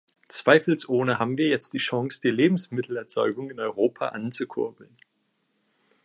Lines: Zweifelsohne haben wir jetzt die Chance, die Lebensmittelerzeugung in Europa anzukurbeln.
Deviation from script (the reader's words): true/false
false